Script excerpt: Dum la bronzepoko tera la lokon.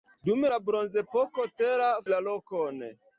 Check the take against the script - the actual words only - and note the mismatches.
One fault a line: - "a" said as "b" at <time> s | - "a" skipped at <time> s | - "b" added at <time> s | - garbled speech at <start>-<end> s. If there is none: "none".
none